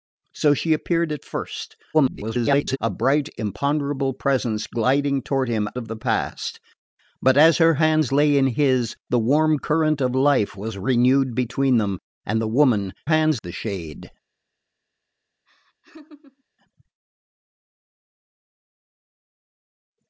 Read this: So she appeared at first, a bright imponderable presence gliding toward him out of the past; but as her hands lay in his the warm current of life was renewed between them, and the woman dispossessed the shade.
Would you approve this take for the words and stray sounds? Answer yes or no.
no